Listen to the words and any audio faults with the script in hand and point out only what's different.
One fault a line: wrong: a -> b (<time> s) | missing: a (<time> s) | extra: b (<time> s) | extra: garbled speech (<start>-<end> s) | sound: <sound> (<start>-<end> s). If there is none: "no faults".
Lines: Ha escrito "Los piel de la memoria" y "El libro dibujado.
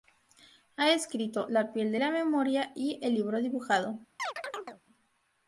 wrong: Los -> La (1.5 s)
sound: chirp (4.2-4.8 s)